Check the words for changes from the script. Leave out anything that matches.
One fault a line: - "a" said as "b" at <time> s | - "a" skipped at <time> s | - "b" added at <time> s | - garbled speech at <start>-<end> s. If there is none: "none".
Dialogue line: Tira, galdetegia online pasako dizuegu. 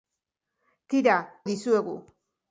- "galdetegia online pasako" skipped at 1.2 s